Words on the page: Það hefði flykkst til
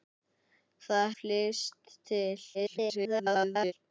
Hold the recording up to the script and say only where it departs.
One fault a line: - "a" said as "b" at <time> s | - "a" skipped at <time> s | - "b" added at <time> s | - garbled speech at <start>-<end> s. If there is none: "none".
- "hefði" skipped at 1.1 s
- garbled speech at 2.5-3.7 s